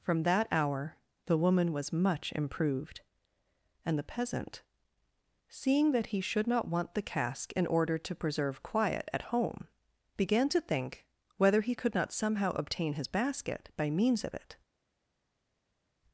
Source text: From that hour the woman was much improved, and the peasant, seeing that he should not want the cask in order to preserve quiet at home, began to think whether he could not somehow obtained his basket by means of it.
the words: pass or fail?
fail